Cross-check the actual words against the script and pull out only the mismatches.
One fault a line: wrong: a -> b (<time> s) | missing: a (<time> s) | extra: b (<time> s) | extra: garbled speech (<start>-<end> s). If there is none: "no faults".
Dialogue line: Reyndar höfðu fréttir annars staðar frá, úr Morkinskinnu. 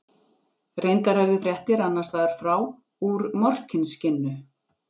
no faults